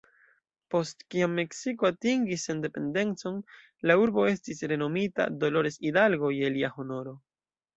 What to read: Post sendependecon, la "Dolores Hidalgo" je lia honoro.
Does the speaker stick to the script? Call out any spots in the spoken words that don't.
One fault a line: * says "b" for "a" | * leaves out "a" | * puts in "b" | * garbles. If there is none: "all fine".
* puts in "kiam Meksiko atingis"
* puts in "urbo estis renomita"